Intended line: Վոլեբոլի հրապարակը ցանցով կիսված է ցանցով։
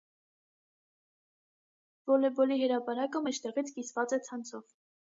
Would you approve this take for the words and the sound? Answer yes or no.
no